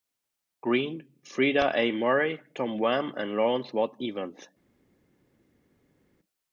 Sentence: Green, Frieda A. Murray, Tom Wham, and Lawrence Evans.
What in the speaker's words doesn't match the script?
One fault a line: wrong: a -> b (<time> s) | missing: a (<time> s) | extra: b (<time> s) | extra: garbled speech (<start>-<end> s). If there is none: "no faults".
extra: Watt (3.7 s)